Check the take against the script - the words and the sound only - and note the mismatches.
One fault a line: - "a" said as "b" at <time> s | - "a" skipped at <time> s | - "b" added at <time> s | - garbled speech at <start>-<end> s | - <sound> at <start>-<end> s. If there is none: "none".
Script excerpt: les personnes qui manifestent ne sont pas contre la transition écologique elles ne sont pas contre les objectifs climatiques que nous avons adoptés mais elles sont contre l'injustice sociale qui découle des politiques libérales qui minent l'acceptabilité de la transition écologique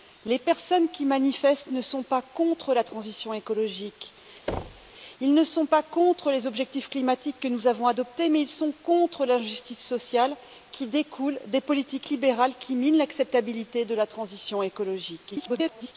- thud at 4.5-4.9 s
- garbled speech at 15.3-16.0 s